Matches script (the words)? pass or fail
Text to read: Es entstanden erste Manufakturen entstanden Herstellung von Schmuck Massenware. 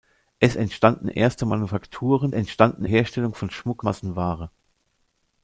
pass